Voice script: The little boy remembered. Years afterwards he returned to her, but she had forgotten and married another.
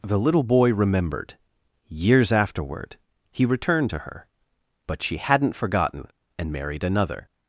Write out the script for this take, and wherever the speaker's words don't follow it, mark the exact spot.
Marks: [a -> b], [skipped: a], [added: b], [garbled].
The little boy remembered. Years [afterwards -> afterward] he returned to her, but she [had -> hadn't] forgotten and married another.